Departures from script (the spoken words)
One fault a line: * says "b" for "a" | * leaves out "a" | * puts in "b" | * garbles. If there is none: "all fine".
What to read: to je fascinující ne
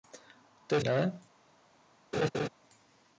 * leaves out "fascinující"